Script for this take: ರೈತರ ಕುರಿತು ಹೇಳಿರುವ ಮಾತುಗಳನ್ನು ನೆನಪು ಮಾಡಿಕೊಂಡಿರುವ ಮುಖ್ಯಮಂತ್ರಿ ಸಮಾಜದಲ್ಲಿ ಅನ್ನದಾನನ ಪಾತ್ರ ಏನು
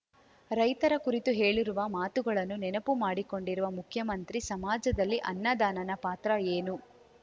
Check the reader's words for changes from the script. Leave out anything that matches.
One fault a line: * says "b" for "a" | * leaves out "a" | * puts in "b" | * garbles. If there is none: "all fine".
all fine